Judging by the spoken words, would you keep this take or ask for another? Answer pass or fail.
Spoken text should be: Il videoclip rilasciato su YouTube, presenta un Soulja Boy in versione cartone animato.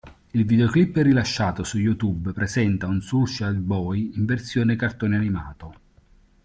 pass